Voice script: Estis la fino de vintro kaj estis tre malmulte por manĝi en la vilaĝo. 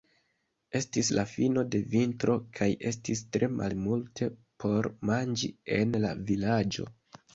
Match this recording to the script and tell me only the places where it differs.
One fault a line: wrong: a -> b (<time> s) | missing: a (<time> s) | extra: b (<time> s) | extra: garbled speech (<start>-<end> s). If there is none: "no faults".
no faults